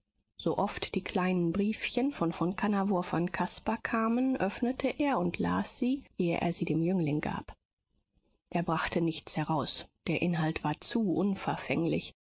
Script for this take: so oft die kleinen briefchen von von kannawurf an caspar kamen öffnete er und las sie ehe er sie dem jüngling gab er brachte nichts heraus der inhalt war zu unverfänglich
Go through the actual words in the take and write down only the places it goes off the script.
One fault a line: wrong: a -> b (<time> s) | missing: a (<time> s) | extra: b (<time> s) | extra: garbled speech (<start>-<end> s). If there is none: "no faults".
no faults